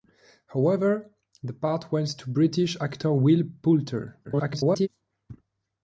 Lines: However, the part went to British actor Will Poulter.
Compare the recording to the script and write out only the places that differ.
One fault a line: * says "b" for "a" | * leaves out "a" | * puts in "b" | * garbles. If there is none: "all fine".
* garbles